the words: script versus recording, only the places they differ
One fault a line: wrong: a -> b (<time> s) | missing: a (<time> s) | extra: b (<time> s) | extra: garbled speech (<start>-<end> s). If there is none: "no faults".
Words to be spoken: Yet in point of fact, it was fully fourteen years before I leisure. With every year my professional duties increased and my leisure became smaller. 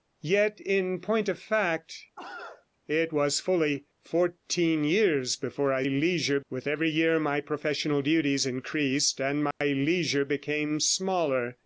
no faults